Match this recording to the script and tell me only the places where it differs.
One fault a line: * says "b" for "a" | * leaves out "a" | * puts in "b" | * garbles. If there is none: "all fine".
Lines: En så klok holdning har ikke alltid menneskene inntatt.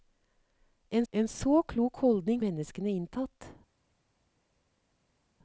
* puts in "en"
* leaves out "har ikke alltid"